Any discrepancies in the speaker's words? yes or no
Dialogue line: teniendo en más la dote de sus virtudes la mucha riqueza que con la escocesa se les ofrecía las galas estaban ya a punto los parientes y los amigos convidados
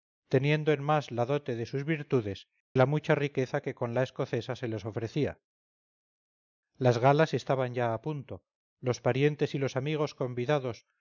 no